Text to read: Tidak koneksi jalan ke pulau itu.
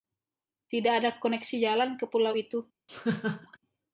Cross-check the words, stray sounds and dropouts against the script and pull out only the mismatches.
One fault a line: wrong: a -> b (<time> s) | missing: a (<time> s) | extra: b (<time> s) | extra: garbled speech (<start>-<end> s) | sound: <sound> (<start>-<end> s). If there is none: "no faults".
extra: ada (1.0 s)
sound: laugh (2.9-3.6 s)